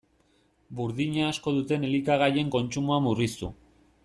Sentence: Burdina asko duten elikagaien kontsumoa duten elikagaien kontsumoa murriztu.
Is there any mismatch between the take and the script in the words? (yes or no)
yes